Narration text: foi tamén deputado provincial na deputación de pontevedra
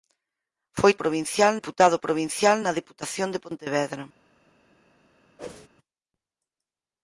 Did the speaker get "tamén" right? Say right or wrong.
wrong